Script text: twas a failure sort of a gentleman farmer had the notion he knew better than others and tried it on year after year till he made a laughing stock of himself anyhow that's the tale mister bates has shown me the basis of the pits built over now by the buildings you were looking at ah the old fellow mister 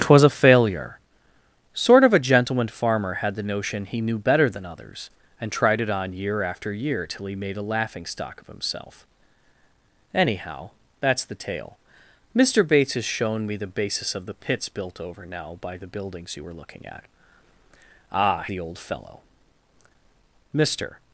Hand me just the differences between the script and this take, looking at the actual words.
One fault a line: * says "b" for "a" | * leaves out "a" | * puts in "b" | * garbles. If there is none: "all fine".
all fine